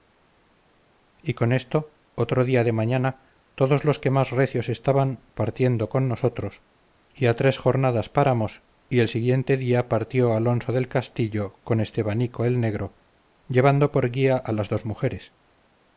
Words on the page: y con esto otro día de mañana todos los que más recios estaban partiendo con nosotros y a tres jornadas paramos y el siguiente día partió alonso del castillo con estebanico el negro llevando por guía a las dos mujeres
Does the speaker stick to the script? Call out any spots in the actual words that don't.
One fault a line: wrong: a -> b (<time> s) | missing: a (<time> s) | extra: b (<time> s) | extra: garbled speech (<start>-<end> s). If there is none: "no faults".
no faults